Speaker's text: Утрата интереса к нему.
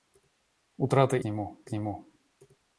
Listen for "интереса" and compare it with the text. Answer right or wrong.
wrong